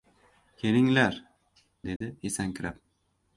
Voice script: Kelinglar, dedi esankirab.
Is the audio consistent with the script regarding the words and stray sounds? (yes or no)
no